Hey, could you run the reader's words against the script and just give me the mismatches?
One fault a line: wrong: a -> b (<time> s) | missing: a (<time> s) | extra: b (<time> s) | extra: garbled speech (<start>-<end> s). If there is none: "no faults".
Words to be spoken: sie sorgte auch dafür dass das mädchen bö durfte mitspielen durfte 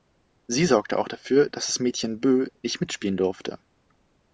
wrong: durfte -> nicht (2.6 s)